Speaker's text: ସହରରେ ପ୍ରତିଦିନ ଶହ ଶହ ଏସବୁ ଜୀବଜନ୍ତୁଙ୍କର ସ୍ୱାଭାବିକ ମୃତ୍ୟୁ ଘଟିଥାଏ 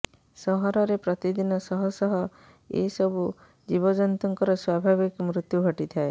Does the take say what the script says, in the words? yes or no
yes